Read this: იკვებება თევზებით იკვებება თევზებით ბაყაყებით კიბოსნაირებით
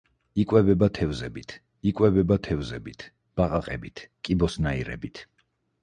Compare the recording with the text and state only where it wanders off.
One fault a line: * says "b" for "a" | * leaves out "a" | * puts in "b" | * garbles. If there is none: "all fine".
all fine